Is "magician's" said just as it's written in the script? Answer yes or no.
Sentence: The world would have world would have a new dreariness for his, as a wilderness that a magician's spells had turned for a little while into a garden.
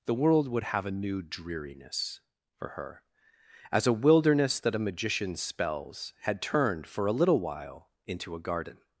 yes